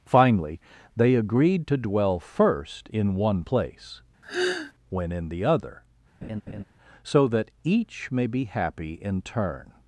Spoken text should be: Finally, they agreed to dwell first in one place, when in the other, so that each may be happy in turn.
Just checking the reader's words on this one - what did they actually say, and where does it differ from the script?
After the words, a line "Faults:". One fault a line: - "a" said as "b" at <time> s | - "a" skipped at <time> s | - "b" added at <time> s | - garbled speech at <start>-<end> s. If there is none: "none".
Finally, they agreed to dwell first in one place, when in the other, so that each may be happy in turn.
Faults:
none